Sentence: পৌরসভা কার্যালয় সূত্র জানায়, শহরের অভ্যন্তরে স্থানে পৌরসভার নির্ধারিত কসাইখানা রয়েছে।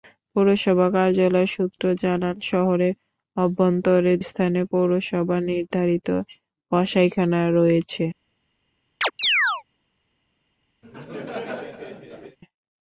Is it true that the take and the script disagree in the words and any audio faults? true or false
true